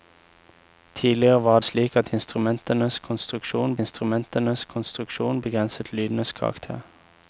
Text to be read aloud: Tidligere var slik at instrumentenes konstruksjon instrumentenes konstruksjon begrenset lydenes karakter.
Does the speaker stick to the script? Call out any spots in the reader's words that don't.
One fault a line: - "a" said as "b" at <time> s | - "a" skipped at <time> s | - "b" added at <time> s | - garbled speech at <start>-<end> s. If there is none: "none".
none